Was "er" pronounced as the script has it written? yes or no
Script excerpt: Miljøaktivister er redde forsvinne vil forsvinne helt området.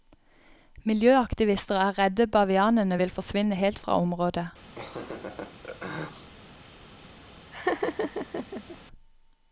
yes